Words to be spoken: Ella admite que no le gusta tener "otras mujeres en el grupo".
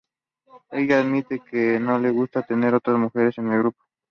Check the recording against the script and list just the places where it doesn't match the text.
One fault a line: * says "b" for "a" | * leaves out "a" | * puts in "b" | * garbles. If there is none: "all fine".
all fine